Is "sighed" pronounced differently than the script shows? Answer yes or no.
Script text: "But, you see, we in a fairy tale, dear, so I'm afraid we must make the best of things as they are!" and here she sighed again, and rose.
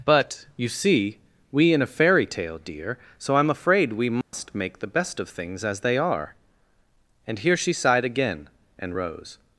no